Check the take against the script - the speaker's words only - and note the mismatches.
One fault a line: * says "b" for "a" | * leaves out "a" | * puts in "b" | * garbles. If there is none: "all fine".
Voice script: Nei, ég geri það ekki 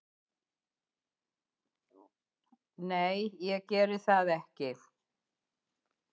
all fine